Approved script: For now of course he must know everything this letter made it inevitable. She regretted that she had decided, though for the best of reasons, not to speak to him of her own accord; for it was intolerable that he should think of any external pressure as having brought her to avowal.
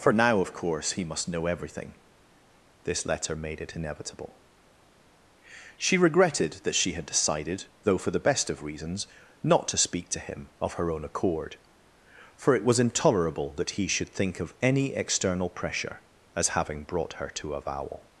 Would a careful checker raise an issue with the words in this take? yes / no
no